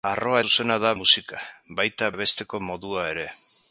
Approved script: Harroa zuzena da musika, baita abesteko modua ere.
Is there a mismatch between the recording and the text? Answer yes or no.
no